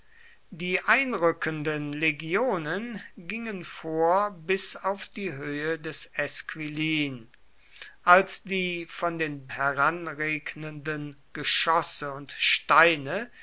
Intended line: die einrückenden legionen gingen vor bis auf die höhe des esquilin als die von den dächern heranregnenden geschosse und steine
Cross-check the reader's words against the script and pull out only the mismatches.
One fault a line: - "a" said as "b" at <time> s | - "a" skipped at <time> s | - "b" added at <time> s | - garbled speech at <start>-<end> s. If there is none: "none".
- "dächern" skipped at 9.5 s